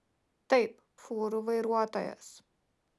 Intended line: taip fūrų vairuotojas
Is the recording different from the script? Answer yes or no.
no